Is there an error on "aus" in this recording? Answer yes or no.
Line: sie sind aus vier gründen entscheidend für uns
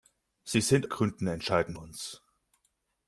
yes